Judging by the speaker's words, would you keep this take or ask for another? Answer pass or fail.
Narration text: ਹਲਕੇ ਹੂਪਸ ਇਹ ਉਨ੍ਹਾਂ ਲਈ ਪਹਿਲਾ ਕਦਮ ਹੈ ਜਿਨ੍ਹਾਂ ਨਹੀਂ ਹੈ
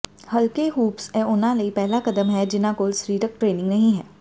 fail